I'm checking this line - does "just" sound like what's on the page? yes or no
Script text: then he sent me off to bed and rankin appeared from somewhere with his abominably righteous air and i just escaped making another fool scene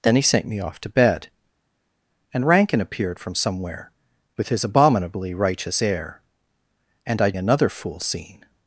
no